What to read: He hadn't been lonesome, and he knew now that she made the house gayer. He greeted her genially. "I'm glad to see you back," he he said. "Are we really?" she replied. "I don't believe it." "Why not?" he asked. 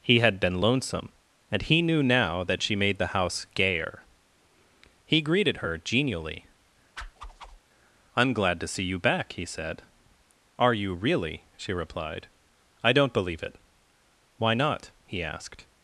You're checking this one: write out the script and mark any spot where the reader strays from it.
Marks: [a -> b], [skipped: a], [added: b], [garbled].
He [hadn't -> had] been lonesome, and he knew now that she made the house gayer. He greeted her genially. "I'm glad to see you back," he [skipped: he] said. "Are [we -> you] really?" she replied. "I don't believe it." "Why not?" he asked.